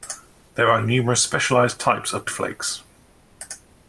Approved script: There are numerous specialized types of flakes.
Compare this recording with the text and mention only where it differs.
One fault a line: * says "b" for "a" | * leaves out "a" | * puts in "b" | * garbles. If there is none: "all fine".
all fine